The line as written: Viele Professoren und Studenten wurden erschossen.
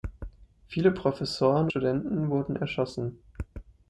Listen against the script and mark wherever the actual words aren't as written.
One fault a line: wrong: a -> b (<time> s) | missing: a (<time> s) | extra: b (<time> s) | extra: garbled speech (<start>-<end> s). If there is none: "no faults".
missing: und (1.7 s)